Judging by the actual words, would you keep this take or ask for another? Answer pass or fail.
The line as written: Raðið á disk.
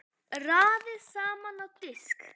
fail